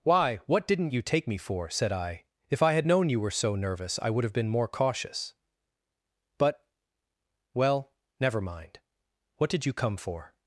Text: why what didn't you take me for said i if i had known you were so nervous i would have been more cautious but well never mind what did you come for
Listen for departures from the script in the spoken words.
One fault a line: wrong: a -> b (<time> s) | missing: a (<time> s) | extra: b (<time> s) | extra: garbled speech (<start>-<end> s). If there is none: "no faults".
no faults